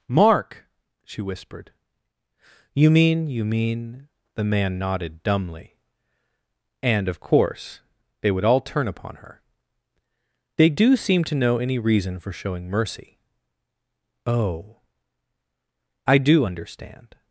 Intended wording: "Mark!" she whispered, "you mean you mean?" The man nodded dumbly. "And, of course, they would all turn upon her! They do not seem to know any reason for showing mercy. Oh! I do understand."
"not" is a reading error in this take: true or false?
true